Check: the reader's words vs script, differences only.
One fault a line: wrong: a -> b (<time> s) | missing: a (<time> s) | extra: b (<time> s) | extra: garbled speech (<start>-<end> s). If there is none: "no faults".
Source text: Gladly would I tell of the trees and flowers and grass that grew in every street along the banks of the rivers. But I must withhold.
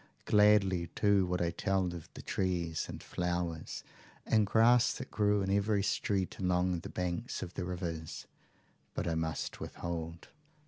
extra: too (0.9 s)